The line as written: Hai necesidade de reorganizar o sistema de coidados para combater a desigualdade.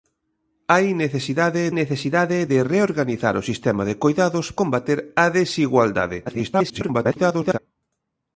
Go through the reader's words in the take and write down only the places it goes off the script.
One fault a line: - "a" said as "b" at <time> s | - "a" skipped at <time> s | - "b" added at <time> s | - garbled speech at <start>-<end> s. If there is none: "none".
- "necesidade" added at 1.8 s
- "para" skipped at 4.5 s
- garbled speech at 6.3-7.6 s